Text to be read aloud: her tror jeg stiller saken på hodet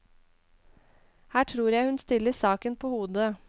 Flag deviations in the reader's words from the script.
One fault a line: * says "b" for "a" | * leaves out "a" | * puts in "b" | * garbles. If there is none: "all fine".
* puts in "hun"